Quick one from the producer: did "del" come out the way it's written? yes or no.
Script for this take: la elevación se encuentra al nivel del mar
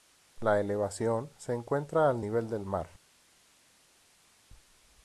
yes